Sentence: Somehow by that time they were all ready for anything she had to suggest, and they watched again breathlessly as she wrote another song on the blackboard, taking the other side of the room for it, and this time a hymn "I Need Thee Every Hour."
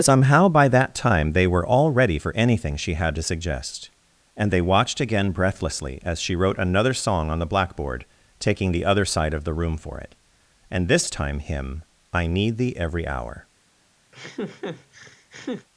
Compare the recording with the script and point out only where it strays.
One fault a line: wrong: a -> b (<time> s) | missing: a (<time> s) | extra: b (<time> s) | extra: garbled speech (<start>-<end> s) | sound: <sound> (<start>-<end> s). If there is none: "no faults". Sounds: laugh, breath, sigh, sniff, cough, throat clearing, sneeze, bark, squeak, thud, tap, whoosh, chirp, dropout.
missing: a (11.4 s)
sound: laugh (14.1-15.7 s)